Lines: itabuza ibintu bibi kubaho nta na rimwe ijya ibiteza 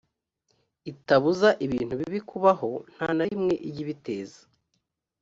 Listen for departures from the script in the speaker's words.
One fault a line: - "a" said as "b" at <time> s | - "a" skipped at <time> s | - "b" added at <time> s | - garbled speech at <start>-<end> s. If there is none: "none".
none